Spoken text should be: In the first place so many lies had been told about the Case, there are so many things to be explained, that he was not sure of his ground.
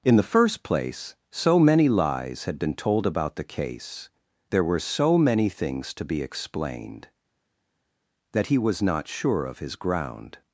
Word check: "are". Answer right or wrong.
wrong